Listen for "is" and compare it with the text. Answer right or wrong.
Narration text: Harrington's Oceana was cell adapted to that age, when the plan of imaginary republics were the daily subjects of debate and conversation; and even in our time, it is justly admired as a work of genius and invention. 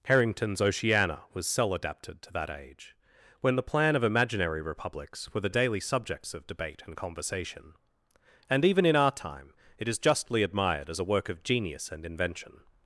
right